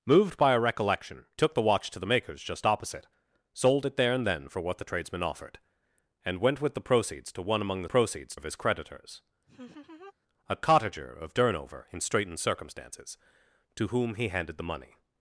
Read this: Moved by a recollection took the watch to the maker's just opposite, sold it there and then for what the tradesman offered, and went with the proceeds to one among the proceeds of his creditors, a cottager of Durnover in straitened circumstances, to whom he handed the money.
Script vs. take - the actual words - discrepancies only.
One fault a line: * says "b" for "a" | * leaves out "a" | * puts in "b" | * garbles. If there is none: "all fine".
all fine